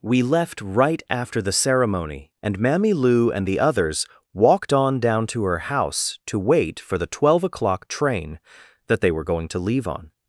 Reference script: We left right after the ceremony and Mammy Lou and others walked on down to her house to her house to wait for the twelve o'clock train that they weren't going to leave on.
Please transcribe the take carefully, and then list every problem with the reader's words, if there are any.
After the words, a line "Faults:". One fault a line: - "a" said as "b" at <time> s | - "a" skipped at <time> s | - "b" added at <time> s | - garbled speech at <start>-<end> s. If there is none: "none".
We left right after the ceremony and Mammy Lou and the others walked on down to her house to wait for the twelve o'clock train that they were going to leave on.
Faults:
- "the" added at 3.5 s
- "her house to" skipped at 6.4 s
- "weren't" said as "were" at 9.1 s